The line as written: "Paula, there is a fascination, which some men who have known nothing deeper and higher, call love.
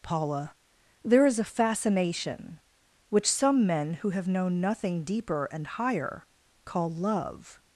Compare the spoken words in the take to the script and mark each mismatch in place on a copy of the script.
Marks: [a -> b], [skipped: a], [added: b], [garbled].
"Paula, there is a fascination, which some men who have known nothing deeper and higher, call love.